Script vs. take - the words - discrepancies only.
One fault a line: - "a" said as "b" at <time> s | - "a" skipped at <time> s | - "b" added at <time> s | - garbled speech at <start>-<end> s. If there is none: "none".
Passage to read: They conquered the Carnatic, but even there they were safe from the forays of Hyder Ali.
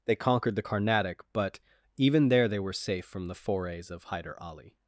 none